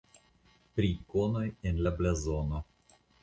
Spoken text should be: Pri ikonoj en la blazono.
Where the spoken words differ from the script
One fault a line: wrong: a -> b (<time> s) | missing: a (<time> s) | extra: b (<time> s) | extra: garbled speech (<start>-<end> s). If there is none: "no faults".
no faults